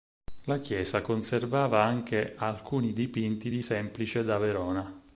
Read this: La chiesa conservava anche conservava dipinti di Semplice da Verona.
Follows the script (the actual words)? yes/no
no